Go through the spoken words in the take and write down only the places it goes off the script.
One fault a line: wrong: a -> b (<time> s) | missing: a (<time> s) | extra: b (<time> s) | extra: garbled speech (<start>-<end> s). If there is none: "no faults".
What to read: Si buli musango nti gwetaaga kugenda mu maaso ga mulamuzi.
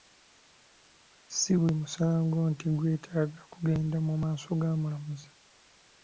no faults